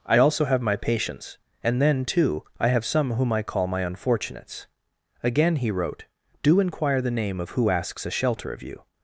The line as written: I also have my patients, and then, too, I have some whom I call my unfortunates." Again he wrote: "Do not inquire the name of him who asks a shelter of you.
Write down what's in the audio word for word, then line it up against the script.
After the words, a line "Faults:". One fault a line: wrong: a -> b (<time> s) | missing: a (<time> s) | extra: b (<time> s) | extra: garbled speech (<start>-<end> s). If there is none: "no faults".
I also have my patients, and then, too, I have some whom I call my unfortunates." Again he wrote: "Do inquire the name of who asks a shelter of you.
Faults:
missing: not (6.6 s)
missing: him (7.5 s)